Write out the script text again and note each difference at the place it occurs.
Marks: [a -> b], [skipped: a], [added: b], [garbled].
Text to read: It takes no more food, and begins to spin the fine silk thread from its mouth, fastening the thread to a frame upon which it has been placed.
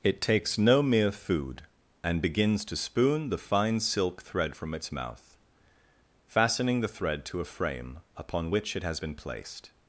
It takes no [more -> mere] food, and begins to [spin -> spoon] the fine silk thread from its mouth, fastening the thread to a frame upon which it has been placed.